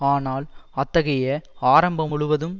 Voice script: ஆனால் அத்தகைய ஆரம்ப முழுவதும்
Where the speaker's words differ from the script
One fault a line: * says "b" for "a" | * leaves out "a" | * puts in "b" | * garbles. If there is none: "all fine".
all fine